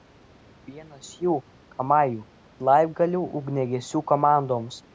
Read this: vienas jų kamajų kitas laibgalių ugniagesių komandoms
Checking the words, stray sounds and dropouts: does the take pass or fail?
fail